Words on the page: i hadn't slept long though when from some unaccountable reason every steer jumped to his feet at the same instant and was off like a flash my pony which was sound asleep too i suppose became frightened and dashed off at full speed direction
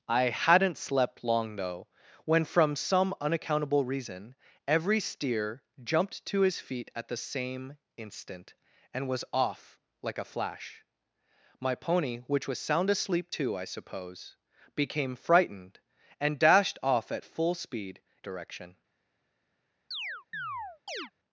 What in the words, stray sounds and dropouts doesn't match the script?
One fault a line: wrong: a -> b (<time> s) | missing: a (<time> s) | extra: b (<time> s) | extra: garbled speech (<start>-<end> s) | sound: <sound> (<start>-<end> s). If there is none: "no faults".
sound: chirp (19.9-21.1 s)